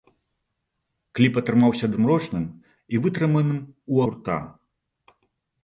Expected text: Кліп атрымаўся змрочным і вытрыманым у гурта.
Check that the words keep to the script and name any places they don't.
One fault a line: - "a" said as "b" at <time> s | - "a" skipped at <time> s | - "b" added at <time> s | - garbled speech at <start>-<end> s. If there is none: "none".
none